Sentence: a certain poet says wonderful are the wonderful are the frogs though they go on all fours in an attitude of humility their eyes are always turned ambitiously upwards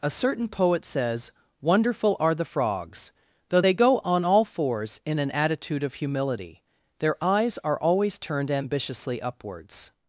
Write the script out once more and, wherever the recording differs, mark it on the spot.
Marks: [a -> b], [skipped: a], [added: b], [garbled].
a certain poet says wonderful are the [skipped: wonderful are the] frogs though they go on all fours in an attitude of humility their eyes are always turned ambitiously upwards